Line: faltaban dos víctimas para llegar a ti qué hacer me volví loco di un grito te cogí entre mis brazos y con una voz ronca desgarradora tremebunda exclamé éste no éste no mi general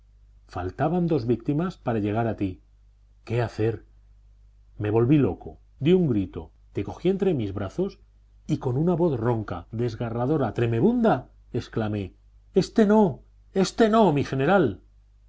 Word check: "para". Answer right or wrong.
right